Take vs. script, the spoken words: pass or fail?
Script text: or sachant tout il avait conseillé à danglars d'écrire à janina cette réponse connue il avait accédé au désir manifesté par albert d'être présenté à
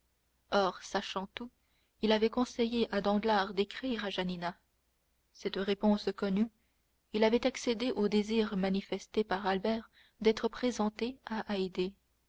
pass